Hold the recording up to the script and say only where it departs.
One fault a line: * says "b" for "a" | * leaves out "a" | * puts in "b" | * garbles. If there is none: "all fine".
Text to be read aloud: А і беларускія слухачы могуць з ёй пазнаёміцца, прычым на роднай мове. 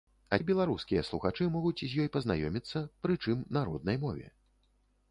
all fine